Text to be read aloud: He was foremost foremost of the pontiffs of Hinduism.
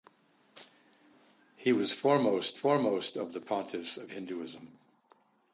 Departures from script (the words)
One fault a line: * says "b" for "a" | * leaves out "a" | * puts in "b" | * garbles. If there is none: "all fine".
all fine